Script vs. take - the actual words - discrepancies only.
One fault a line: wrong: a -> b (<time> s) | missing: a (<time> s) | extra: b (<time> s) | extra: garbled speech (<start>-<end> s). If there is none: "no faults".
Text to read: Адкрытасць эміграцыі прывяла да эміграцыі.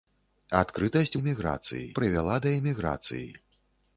no faults